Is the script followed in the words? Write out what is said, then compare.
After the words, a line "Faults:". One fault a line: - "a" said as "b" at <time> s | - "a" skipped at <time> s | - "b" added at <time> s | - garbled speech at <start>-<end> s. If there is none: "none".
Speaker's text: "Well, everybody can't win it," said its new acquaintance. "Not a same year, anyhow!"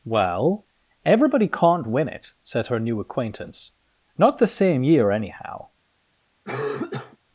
"Well, everybody can't win it," said her new acquaintance. "Not the same year, anyhow!"
Faults:
- "its" said as "her" at 2.7 s
- "a" said as "the" at 4.4 s